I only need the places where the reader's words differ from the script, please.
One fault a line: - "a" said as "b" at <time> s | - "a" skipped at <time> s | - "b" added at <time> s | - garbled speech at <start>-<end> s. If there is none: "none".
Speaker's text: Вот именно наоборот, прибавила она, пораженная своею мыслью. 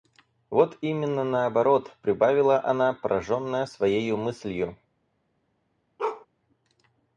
none